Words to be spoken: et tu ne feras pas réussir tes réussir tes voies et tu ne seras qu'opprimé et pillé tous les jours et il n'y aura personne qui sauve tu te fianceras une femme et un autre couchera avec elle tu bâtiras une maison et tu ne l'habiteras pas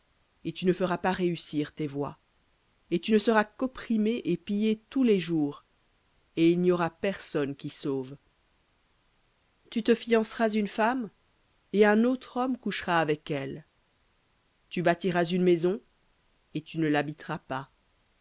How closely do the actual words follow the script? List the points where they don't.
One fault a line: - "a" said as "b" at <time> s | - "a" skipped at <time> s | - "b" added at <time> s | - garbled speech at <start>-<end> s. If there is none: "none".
- "réussir tes" skipped at 1.9 s
- "homme" added at 12.4 s